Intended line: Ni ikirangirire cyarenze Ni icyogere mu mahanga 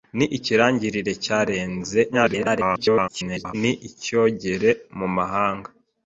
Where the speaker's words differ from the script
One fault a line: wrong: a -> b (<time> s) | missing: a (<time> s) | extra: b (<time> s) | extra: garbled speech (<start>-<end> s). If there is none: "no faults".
extra: garbled speech (2.1-3.5 s)